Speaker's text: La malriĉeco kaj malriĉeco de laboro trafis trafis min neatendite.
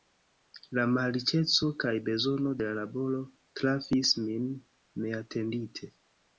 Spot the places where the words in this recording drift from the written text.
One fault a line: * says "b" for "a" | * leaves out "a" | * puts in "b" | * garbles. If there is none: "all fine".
* says "bezono" for "malriĉeco"
* leaves out "trafis"